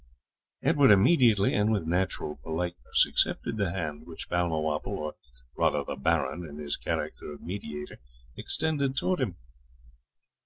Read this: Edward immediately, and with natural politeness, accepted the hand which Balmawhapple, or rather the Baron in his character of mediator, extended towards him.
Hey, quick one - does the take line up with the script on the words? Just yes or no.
yes